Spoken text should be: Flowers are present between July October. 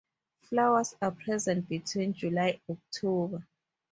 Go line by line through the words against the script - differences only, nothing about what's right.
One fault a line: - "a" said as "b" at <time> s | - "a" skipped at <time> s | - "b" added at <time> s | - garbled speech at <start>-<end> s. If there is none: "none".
none